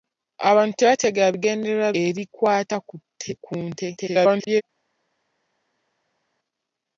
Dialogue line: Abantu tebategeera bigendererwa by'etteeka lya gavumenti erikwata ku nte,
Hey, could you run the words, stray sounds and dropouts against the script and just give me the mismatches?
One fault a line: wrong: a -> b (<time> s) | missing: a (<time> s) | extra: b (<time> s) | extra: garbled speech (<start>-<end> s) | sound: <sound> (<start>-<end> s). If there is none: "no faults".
missing: by'etteeka lya gavumenti (1.9 s)
extra: garbled speech (4.0-4.6 s)